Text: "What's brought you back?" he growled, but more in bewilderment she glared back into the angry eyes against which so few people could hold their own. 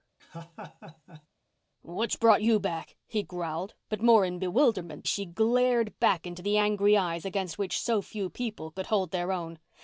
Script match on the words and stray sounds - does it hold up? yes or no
no